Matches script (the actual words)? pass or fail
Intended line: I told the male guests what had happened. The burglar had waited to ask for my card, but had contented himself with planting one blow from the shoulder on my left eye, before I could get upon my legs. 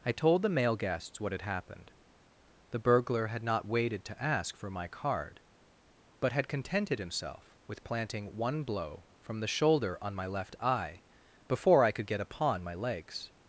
fail